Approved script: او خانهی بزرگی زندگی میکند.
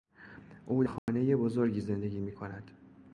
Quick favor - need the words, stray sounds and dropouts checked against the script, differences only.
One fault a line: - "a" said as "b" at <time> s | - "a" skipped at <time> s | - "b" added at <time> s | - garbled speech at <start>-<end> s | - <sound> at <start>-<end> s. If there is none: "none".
- dropout at 1.0-1.1 s